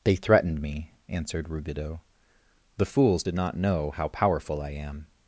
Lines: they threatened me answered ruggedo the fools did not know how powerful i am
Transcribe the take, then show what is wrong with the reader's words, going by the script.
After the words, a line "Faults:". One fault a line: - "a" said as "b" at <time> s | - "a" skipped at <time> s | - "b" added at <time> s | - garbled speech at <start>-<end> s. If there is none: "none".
they threatened me answered ruggedo the fools did not know how powerful i am
Faults:
none